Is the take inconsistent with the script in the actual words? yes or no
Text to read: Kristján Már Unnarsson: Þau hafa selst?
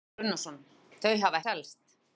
no